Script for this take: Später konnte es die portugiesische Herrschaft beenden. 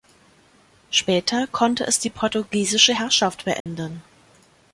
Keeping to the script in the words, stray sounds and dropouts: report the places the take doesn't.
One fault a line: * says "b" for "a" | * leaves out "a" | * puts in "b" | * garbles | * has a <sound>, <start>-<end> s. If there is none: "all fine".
* has a dropout, 3.6-3.7 s